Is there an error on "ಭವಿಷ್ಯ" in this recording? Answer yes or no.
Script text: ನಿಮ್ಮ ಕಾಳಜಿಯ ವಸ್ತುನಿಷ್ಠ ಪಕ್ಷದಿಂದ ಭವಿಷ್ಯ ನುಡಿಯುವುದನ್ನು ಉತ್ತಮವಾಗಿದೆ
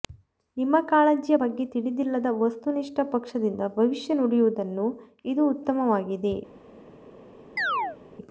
no